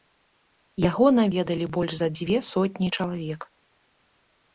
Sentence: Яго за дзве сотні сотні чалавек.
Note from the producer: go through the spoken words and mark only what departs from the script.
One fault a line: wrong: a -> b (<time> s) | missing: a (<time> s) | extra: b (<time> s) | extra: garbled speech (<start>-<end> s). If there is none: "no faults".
extra: наведалі больш (1.2 s)
missing: сотні (2.9 s)